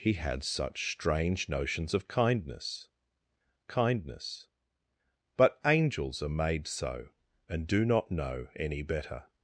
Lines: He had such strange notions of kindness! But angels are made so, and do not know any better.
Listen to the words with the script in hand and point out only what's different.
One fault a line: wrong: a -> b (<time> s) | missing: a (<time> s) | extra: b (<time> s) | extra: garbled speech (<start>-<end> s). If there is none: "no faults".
extra: kindness (3.7 s)